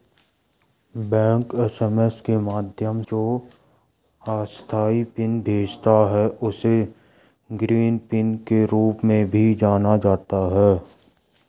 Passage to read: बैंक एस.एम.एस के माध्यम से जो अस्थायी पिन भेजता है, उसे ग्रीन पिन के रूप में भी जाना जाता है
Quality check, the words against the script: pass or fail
fail